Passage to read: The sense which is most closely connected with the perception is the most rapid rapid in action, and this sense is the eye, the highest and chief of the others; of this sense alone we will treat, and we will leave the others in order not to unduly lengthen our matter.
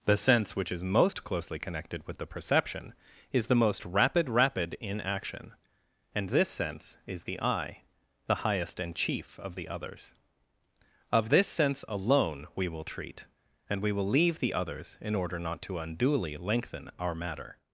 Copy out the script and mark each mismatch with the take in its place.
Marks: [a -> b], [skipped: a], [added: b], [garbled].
The sense which is most closely connected with the perception is the most rapid rapid in action, and this sense is the eye, the highest and chief of the others; of this sense alone we will treat, and we will leave the others in order not to unduly lengthen our matter.